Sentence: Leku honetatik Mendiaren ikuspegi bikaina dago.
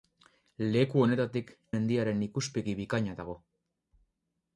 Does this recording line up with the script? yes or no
yes